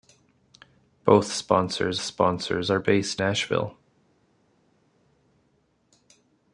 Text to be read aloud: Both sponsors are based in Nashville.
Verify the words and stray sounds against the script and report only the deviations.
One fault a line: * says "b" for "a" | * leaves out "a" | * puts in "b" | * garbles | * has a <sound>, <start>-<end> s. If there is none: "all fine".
* puts in "sponsors"
* leaves out "in"